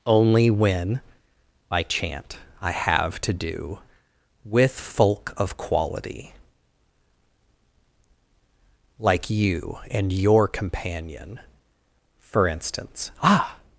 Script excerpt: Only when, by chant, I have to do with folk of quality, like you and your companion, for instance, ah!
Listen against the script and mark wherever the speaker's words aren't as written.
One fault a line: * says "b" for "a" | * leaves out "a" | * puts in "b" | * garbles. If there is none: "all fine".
all fine